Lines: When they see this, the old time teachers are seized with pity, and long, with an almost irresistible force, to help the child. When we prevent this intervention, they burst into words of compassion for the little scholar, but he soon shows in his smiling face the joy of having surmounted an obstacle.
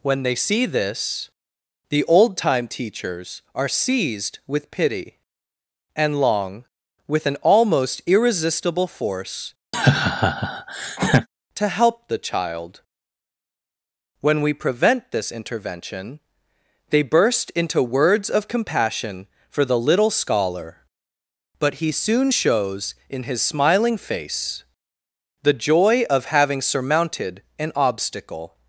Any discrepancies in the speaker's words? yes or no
no